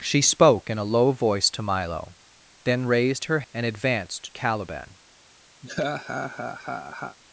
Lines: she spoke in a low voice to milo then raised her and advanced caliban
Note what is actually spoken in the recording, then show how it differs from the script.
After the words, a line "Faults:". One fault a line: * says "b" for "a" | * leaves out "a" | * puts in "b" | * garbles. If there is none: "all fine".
she spoke in a low voice to milo then raised her and advanced caliban
Faults:
all fine